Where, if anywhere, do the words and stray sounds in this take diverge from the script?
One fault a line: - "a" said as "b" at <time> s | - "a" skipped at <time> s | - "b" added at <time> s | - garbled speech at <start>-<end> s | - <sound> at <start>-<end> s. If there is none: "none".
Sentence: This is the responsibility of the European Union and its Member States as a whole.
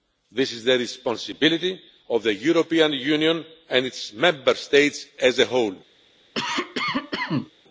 - cough at 6.3-7.5 s